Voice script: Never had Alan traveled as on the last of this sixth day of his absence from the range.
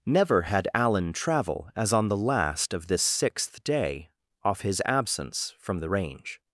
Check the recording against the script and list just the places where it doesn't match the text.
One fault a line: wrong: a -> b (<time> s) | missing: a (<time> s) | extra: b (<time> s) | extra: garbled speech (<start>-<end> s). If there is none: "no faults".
wrong: traveled -> travel (1.1 s)
wrong: of -> off (4.4 s)